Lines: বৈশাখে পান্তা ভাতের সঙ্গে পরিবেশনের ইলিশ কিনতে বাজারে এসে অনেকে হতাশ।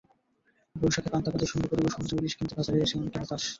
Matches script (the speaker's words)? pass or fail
pass